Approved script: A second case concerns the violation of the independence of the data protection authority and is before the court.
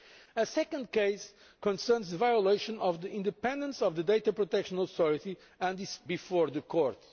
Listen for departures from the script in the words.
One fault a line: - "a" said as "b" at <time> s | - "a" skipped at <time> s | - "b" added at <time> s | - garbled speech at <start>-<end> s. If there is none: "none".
none